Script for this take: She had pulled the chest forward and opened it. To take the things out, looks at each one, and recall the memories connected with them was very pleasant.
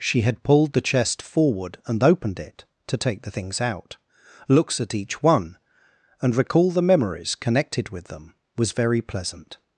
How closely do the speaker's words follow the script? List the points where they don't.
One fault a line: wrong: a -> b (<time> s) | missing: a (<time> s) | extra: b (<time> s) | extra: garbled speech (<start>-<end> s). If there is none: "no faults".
no faults